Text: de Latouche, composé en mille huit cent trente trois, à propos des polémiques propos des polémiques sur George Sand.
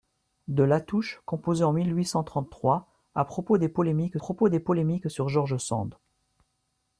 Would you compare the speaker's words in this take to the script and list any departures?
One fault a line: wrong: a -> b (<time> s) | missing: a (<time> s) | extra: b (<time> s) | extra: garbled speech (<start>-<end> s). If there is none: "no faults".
no faults